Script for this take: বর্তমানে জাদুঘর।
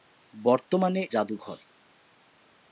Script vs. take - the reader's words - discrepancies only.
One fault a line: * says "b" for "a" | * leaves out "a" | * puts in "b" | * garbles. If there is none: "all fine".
all fine